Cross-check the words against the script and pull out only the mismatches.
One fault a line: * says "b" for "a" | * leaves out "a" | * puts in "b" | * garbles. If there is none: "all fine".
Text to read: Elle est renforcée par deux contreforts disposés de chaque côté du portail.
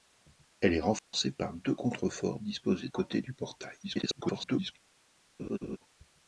* leaves out "de chaque"
* garbles